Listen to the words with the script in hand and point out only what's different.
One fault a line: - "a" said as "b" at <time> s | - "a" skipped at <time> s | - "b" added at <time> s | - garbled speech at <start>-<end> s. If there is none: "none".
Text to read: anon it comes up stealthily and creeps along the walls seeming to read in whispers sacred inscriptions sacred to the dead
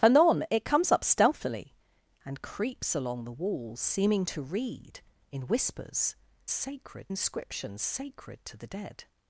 none